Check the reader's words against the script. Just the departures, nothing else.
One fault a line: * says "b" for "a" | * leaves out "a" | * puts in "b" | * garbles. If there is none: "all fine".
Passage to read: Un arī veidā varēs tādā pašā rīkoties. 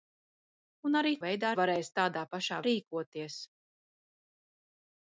all fine